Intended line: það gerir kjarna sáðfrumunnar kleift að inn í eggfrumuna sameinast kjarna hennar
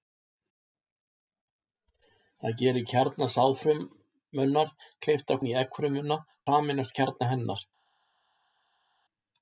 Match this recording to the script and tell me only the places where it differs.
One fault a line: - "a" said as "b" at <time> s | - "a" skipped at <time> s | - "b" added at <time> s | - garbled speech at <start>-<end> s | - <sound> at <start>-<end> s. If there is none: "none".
none